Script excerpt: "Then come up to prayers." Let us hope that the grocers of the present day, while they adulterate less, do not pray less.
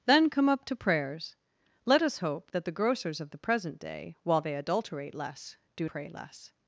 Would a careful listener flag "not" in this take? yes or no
yes